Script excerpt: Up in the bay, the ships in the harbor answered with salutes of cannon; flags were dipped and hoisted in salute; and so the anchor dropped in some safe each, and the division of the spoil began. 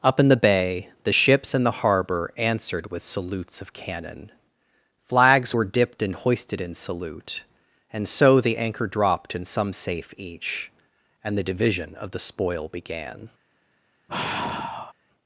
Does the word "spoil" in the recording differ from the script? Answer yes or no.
no